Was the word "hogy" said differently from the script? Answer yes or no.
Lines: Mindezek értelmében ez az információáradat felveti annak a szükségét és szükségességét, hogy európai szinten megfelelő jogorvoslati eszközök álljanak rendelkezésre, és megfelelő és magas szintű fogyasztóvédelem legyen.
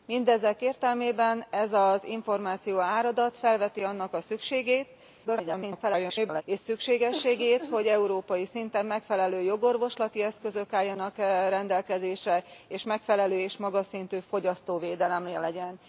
no